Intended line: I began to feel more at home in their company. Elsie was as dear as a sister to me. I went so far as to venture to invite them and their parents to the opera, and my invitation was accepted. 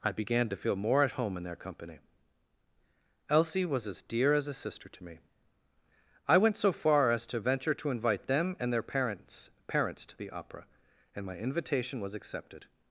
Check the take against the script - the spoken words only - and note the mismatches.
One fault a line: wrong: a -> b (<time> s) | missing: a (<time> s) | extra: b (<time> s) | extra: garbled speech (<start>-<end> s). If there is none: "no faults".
extra: parents (9.7 s)